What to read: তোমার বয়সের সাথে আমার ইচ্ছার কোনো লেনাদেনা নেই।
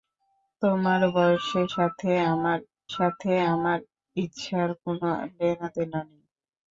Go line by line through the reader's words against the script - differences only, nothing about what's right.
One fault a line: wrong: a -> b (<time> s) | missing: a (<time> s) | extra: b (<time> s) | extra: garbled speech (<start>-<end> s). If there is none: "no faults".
extra: সাথে আমার (3.0 s)